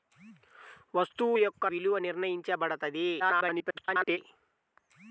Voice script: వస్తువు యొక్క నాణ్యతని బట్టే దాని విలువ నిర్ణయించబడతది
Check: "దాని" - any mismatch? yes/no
yes